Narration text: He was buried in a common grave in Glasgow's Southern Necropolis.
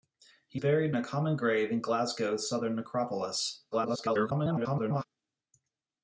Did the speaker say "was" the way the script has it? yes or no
no